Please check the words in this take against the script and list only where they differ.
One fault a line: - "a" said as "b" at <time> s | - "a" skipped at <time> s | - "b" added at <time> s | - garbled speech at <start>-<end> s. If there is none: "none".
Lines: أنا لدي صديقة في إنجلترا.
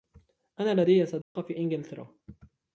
none